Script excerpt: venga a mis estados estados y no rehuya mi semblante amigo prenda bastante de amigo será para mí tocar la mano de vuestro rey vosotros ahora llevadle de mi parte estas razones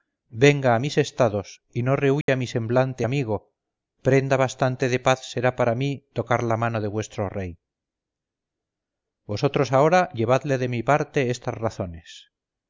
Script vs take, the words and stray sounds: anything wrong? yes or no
yes